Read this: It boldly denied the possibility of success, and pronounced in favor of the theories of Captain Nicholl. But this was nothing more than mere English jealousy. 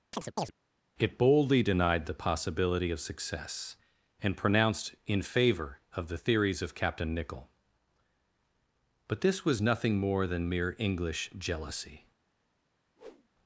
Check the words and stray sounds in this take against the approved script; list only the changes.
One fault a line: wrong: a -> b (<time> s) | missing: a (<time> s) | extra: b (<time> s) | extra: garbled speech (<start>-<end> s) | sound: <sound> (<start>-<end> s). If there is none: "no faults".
sound: chirp (0.1-0.5 s)
sound: whoosh (13.0-13.3 s)